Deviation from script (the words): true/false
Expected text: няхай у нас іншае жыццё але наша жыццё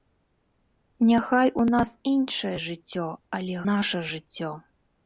false